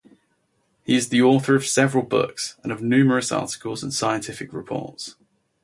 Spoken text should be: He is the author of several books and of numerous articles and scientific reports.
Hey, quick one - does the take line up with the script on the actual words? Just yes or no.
yes